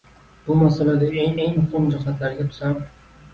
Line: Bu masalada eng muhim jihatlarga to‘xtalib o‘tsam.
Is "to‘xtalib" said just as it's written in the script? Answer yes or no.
no